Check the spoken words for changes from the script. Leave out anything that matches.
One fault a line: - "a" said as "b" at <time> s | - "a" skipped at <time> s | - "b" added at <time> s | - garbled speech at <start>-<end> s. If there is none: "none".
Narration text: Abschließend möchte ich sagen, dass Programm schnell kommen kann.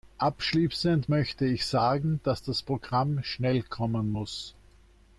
- "das" added at 2.4 s
- "kann" said as "muss" at 4.1 s